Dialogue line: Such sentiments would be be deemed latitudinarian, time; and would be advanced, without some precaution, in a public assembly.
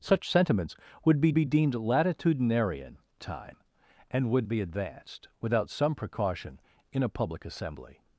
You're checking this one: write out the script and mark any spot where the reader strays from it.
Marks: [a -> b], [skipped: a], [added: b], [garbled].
Such sentiments would be be deemed latitudinarian, time; and would be advanced, without some precaution, in a public assembly.